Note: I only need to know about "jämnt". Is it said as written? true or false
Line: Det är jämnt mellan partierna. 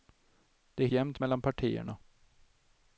true